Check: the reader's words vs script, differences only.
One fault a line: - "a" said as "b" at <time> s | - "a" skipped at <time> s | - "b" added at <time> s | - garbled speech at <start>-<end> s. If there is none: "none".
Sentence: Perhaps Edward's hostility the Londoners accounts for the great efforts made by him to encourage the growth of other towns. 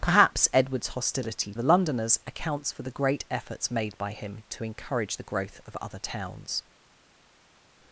none